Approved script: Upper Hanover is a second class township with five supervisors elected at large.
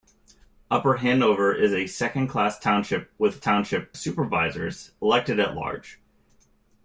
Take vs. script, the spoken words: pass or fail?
fail